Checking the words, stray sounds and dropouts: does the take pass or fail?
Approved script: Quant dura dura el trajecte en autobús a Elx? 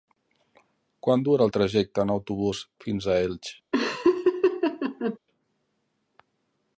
fail